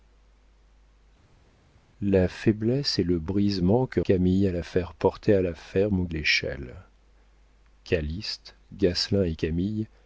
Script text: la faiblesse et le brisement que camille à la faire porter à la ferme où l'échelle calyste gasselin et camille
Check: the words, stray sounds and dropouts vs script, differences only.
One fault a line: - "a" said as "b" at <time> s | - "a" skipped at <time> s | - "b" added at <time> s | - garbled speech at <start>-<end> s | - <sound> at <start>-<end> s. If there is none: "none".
none